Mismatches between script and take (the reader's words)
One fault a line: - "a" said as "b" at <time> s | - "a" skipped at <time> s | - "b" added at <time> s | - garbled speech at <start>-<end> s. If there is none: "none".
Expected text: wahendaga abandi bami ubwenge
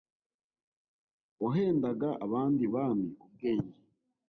none